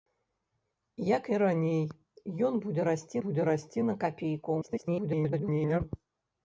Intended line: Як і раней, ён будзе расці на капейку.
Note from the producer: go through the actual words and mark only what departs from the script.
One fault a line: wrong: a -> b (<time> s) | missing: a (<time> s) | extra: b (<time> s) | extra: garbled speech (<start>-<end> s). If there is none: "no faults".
extra: будзе расці (3.2 s)
extra: garbled speech (4.6-5.8 s)